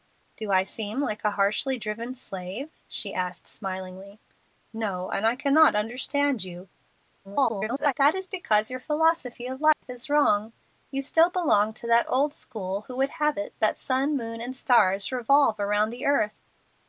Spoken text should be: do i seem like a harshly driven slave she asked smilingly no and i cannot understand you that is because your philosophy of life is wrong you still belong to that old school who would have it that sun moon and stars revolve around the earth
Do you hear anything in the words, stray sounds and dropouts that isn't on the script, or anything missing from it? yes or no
yes